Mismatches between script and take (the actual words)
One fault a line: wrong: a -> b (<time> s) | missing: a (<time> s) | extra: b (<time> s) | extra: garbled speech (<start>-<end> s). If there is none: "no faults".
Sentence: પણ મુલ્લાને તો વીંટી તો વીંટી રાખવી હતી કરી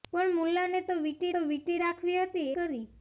no faults